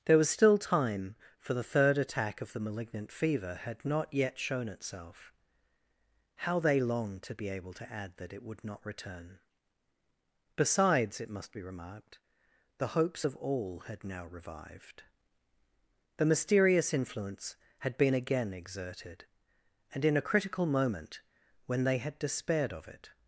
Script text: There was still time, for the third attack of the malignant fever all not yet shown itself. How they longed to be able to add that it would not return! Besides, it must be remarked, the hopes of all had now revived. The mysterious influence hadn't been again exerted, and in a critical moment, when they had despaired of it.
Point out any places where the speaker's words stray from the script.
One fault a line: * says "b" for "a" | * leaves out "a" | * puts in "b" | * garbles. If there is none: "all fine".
* says "had" for "all"
* says "had" for "hadn't"